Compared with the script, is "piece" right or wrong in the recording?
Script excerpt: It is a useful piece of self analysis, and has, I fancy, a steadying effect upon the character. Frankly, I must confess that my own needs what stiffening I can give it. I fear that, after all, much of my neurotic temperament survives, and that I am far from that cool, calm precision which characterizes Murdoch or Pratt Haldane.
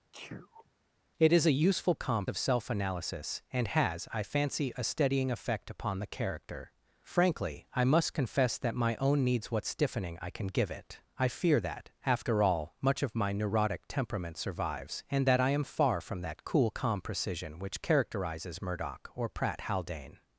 wrong